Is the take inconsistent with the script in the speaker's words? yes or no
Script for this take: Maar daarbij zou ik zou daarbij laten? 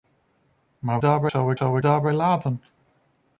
no